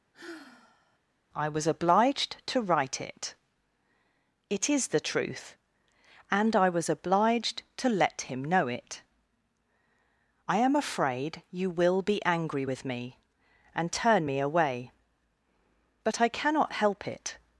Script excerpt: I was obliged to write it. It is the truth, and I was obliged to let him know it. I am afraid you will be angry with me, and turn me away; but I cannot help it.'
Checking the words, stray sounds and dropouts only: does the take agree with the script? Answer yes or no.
no